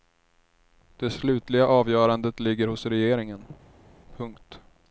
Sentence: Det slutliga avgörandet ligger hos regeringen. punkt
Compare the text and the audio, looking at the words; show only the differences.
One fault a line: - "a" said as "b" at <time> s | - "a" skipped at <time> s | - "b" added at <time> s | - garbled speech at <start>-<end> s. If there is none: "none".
none